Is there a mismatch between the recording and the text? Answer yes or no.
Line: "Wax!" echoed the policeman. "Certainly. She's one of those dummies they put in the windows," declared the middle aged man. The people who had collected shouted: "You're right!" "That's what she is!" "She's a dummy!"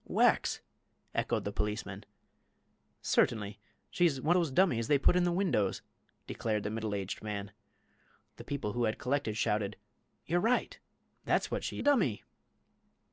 yes